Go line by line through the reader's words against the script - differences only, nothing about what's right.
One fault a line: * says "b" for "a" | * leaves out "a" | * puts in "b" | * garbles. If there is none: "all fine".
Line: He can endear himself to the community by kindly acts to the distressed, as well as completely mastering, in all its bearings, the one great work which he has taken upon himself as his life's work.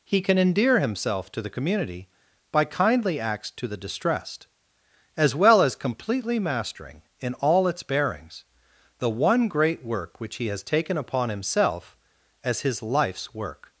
all fine